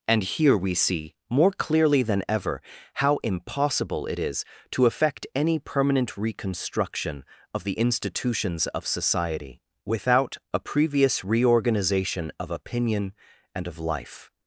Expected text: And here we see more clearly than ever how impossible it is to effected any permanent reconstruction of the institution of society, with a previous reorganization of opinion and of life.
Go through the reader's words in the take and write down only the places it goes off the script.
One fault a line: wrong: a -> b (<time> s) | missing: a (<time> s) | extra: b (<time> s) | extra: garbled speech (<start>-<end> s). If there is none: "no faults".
wrong: effected -> effect (4.8 s)
wrong: institution -> institutions (7.7 s)
wrong: with -> without (9.9 s)